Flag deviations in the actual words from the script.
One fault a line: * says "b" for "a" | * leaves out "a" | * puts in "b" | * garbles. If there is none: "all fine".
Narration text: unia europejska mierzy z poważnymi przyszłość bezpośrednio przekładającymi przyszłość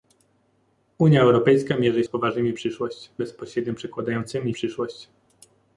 all fine